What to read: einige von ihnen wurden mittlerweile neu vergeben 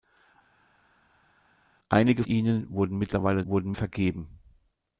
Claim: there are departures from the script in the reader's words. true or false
true